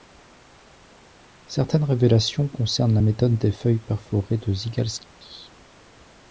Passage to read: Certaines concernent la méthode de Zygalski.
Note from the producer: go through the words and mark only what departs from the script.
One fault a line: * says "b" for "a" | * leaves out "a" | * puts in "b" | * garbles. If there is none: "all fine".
* puts in "révélations"
* puts in "des feuilles perforées"